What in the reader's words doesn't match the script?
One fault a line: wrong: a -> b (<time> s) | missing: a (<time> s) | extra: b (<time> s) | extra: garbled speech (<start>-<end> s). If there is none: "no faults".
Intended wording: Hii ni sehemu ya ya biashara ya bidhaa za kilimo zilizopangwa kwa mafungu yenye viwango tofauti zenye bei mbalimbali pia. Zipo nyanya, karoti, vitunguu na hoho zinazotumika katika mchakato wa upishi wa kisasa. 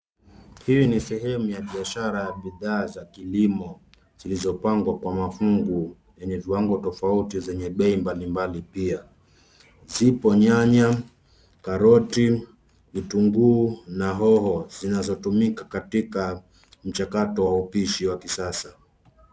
missing: ya (1.6 s)